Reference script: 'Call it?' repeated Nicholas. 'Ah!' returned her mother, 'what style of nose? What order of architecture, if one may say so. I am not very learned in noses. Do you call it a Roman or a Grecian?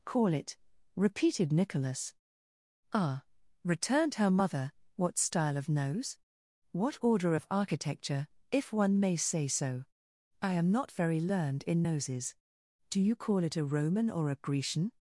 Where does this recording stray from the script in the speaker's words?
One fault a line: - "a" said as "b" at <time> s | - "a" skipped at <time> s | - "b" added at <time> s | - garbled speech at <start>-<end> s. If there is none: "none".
none